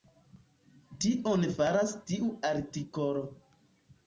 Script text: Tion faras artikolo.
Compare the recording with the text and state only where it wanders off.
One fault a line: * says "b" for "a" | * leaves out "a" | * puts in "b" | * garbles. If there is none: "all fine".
* puts in "tiu"